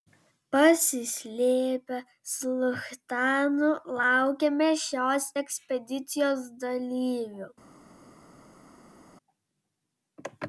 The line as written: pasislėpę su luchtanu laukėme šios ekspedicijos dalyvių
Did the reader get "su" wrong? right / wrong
right